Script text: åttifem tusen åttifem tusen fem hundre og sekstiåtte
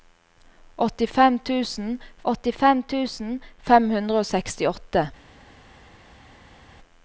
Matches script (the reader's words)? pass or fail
pass